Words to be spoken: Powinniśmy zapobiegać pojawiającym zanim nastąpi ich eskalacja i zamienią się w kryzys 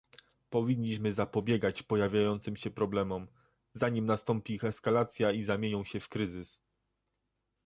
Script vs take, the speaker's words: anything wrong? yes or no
yes